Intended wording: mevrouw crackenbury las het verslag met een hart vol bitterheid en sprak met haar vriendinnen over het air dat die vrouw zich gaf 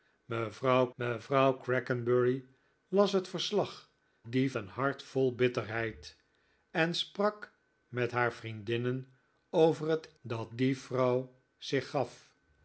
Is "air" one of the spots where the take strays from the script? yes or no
yes